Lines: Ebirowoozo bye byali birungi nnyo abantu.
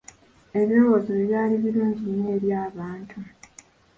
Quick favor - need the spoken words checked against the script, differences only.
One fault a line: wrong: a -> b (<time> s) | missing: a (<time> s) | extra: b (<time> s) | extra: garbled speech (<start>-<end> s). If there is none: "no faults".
extra: eri (2.4 s)